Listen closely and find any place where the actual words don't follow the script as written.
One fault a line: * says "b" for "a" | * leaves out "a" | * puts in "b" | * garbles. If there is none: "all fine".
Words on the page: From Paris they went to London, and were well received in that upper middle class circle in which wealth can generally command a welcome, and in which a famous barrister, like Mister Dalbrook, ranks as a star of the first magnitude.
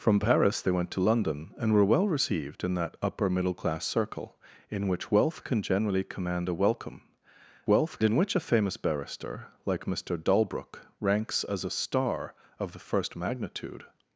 * says "wealth" for "and"